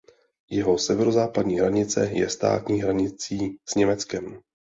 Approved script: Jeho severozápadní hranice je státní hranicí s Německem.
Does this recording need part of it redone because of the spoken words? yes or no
no